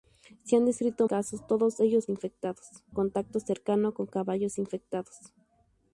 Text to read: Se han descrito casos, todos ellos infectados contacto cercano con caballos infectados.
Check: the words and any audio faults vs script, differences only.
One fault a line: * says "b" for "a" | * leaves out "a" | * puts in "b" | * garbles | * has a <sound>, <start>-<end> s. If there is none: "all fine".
all fine